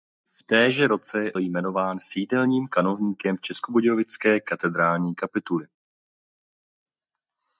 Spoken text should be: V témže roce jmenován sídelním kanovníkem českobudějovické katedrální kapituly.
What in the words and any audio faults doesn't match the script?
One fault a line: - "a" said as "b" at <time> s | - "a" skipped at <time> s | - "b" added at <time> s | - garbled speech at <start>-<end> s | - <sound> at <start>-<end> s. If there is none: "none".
none